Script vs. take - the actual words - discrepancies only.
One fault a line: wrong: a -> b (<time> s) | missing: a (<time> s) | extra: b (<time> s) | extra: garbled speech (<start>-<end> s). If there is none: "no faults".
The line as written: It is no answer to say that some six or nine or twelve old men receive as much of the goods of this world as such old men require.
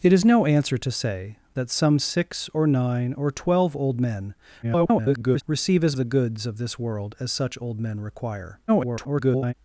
extra: garbled speech (4.6-5.4 s)
missing: much of (6.0 s)
extra: garbled speech (8.7-9.5 s)